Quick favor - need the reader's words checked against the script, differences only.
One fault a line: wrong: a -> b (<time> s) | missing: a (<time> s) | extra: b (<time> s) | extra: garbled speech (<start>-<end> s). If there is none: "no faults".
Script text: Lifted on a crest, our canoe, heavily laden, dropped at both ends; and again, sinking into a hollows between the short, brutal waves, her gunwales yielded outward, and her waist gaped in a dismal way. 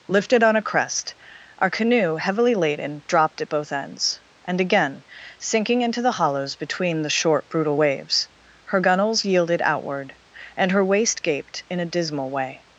wrong: a -> the (6.0 s)